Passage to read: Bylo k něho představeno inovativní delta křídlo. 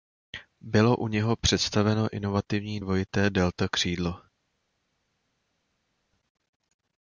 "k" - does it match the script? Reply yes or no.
no